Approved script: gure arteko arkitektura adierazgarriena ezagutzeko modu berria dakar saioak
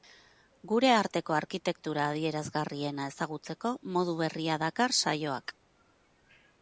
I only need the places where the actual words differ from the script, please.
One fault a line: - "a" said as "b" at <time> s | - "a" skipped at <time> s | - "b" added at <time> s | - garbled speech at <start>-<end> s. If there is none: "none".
none